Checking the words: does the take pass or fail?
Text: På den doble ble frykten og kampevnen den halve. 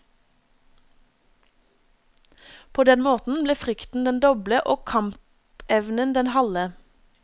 fail